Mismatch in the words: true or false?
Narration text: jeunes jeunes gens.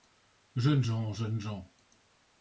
true